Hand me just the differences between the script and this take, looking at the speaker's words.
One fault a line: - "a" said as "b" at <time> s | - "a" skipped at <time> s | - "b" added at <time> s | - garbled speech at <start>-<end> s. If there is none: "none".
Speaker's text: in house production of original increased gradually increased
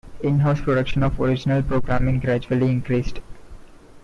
- "increased" said as "programming" at 1.6 s